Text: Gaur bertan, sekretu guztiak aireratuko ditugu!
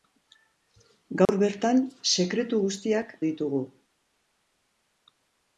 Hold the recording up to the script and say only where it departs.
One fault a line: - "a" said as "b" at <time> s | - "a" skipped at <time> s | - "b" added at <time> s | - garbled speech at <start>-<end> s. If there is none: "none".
- "aireratuko" skipped at 3.1 s